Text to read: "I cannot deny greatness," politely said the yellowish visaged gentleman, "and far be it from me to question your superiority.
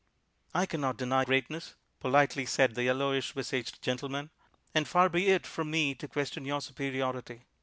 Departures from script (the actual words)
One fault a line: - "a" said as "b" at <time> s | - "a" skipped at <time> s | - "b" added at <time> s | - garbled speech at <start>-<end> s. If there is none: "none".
none